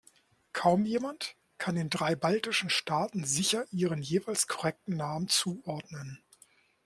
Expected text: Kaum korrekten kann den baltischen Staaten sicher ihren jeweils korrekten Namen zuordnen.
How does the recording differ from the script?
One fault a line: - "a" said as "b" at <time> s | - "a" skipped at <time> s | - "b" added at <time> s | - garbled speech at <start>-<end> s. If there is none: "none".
- "korrekten" said as "jemand" at 0.8 s
- "drei" added at 1.9 s